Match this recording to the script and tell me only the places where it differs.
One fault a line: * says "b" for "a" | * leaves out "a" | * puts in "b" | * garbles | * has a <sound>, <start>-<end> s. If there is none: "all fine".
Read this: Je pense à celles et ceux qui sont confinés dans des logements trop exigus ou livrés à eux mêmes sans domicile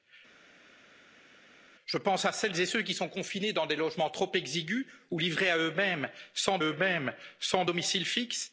* puts in "eux mêmes sans"